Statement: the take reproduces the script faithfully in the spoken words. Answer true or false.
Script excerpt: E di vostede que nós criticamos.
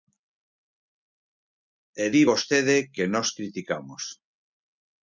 true